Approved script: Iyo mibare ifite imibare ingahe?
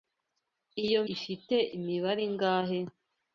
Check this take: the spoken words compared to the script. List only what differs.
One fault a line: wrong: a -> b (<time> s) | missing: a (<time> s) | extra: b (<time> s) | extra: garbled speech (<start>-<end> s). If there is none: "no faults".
missing: mibare (1.0 s)